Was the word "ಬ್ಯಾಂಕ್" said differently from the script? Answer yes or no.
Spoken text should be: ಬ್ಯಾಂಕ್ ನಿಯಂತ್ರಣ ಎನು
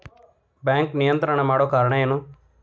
no